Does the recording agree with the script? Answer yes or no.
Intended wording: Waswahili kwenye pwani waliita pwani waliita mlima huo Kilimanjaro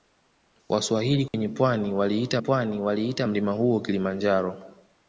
yes